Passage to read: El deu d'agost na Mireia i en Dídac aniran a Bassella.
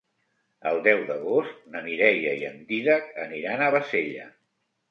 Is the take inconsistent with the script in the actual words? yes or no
no